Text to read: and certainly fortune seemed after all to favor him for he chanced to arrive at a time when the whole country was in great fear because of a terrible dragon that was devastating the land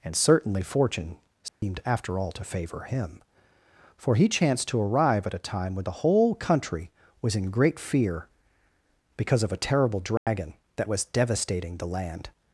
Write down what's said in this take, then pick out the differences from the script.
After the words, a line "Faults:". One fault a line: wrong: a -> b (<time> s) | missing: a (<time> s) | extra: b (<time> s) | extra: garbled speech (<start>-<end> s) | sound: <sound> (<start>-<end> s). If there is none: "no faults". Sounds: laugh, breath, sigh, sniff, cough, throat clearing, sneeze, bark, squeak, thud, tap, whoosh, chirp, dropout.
and certainly fortune seemed after all to favor him for he chanced to arrive at a time when the whole country was in great fear because of a terrible dragon that was devastating the land
Faults:
sound: dropout (1.5-1.6 s)
sound: dropout (10.2-10.3 s)